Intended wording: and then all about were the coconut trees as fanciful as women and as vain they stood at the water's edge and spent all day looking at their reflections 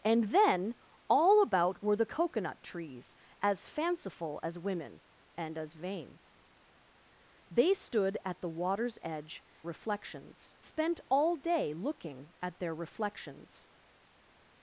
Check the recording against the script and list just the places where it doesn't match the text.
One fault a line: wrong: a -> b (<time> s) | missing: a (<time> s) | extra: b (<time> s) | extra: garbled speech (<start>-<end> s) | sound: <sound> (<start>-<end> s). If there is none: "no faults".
wrong: and -> reflections (9.6 s)